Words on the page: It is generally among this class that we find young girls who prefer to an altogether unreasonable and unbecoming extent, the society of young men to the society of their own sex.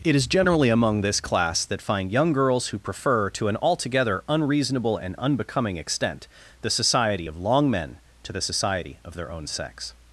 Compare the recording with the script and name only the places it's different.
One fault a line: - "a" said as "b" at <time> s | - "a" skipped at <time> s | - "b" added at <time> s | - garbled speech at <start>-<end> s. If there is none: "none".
- "we" skipped at 1.8 s
- "young" said as "long" at 7.4 s